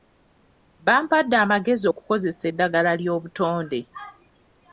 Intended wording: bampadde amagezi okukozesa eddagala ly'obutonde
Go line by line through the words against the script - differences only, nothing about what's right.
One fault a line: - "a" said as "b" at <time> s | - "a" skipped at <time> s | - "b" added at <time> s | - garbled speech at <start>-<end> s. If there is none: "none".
none